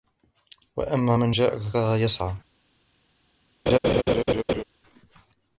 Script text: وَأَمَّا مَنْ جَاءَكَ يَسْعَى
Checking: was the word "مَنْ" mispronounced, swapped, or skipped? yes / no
no